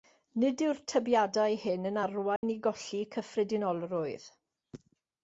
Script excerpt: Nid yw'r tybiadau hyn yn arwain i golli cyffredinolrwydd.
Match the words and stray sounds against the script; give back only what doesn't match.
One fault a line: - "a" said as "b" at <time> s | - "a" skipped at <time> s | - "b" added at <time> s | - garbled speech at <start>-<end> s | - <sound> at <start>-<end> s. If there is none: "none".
- dropout at 2.4-2.4 s